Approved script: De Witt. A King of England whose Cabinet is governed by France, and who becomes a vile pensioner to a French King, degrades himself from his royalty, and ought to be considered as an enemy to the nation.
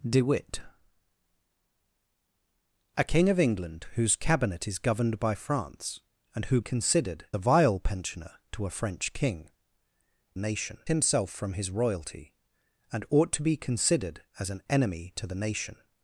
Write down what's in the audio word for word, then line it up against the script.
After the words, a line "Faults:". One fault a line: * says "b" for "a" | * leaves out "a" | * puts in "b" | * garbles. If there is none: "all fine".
De Witt. A King of England whose Cabinet is governed by France, and who considered a vile pensioner to a French King, nation himself from his royalty, and ought to be considered as an enemy to the nation.
Faults:
* says "considered" for "becomes"
* says "nation" for "degrades"